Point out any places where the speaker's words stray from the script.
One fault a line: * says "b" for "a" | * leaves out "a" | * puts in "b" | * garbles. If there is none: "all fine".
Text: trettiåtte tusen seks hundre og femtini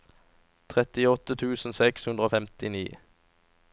all fine